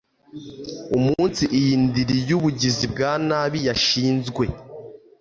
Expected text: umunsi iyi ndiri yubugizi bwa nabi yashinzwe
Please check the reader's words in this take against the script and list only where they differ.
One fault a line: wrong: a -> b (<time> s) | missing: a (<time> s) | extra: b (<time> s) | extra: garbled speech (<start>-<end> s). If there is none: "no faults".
no faults